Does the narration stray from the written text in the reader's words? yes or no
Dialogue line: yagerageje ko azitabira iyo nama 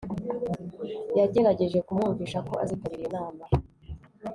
yes